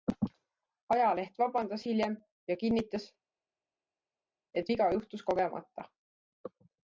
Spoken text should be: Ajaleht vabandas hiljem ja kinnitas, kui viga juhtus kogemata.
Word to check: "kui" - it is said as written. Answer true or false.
false